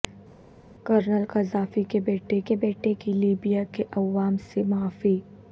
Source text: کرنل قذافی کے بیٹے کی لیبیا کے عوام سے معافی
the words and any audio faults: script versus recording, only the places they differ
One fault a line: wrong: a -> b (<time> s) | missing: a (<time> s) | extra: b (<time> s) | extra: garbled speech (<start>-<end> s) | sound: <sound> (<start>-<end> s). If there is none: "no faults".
extra: کے بیٹے (2.4 s)